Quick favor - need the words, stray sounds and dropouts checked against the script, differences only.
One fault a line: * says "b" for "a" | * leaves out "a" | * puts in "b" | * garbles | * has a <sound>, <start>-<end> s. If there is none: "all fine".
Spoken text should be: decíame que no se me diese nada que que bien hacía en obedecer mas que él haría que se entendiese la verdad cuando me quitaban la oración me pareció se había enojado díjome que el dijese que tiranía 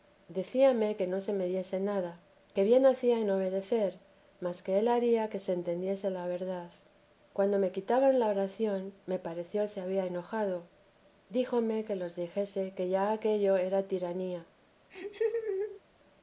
* leaves out "que"
* says "los" for "el"
* puts in "ya aquello era"
* has a laugh, 14.9-15.8 s